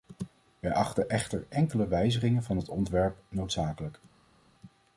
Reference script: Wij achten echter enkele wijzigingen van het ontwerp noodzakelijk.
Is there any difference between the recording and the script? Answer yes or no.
no